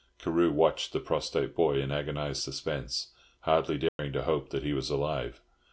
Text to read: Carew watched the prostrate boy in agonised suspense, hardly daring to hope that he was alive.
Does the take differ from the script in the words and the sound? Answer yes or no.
yes